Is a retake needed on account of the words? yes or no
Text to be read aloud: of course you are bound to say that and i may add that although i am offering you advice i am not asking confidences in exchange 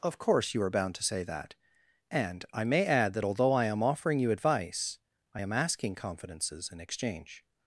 yes